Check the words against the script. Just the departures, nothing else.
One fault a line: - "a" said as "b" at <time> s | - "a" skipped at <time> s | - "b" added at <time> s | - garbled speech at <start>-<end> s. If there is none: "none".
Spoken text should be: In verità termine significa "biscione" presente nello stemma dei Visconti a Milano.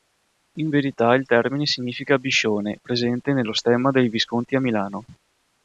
- "il" added at 1.1 s